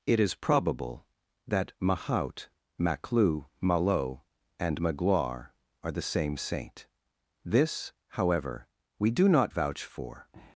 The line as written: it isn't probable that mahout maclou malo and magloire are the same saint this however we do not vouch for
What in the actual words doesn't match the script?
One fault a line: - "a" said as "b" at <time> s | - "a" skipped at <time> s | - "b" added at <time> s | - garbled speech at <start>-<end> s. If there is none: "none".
- "isn't" said as "is" at 0.2 s